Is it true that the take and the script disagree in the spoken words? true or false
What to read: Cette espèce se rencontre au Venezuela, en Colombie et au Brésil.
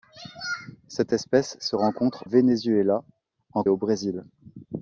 true